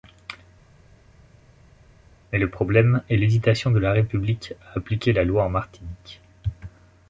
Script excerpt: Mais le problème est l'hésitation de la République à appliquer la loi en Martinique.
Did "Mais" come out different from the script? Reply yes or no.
no